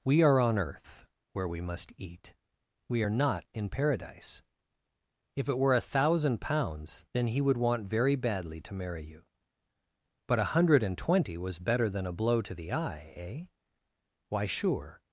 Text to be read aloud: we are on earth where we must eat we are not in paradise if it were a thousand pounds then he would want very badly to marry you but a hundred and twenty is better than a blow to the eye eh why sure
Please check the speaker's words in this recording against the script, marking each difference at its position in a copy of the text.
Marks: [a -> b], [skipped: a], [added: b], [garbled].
we are on earth where we must eat we are not in paradise if it were a thousand pounds then he would want very badly to marry you but a hundred and twenty [is -> was] better than a blow to the eye eh why sure